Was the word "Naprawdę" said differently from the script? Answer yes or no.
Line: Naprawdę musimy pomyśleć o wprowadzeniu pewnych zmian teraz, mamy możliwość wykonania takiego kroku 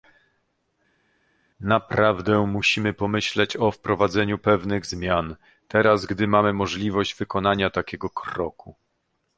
no